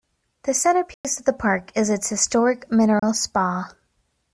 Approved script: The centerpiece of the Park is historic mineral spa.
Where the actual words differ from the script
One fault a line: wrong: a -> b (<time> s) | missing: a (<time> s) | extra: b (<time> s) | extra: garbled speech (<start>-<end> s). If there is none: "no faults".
extra: its (1.9 s)